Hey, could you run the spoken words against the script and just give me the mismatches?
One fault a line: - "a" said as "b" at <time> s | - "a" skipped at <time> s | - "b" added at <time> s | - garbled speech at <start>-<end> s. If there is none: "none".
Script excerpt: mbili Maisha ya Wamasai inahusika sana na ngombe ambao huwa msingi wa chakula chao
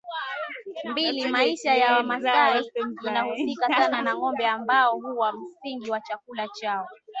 none